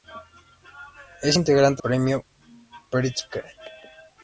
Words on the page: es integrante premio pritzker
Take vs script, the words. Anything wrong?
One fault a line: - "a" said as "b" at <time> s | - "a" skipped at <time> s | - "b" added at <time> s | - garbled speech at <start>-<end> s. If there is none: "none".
none